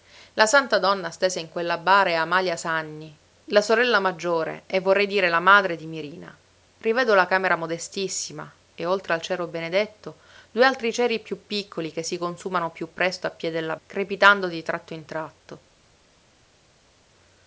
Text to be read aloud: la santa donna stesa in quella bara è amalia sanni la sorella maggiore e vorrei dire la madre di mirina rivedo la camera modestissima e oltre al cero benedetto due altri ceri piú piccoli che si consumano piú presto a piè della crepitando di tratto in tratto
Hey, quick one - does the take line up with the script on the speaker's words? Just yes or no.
yes